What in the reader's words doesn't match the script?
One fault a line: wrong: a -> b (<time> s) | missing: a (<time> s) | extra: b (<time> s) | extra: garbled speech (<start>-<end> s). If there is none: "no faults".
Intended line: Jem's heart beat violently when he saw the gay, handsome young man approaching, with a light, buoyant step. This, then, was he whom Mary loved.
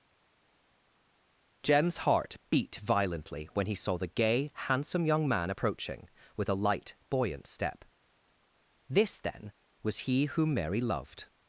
no faults